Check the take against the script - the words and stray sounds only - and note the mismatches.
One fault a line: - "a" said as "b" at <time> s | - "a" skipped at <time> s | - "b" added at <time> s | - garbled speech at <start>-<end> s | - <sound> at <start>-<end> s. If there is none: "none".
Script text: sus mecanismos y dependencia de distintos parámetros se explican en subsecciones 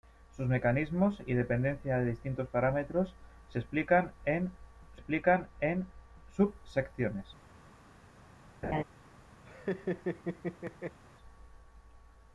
- "explican en" added at 4.9 s
- laugh at 8.6-8.8 s
- laugh at 9.4-11.0 s